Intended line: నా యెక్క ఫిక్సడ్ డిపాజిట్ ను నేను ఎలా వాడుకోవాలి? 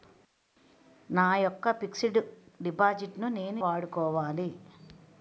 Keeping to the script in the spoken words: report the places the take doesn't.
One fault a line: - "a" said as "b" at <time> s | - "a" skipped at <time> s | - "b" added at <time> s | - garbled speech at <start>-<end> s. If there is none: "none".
- "ఎలా" skipped at 3.6 s